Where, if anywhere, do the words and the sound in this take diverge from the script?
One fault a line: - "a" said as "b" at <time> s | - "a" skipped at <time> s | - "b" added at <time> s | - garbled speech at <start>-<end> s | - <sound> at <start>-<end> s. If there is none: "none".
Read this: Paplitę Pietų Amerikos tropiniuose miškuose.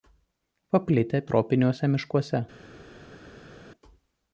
- "Pietų Amerikos" skipped at 1.2 s